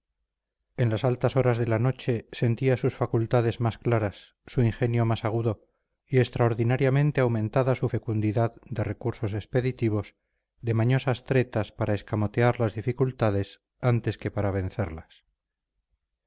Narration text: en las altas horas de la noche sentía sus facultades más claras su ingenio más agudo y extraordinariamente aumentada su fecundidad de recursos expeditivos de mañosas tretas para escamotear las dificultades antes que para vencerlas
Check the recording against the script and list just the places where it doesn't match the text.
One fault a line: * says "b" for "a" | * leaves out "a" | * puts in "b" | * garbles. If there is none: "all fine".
all fine